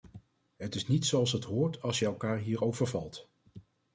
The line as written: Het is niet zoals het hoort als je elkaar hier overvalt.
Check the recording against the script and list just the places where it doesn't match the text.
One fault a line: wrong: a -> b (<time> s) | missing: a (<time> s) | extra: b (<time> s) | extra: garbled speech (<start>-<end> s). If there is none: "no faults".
no faults